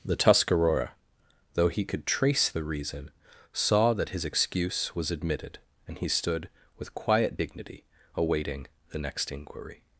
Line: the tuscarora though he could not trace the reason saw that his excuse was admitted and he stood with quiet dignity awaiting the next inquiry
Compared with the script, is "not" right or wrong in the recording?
wrong